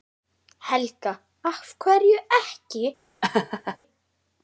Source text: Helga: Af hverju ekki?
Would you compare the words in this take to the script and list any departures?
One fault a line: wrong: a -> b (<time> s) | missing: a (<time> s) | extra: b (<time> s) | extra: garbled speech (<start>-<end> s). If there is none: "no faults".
no faults